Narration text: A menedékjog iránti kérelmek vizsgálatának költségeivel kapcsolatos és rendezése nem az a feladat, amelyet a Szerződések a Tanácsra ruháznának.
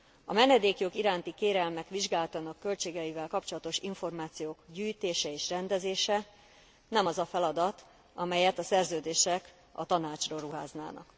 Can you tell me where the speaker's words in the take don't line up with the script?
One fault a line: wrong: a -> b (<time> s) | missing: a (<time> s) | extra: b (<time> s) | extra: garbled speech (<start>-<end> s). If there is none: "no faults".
extra: információk gyűjtése (3.8 s)